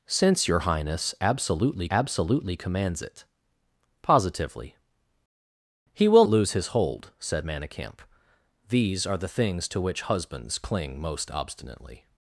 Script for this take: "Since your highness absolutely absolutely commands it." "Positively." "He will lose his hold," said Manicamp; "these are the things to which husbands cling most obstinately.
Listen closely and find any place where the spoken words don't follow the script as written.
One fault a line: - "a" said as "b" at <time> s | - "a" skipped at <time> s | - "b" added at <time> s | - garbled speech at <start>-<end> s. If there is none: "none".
none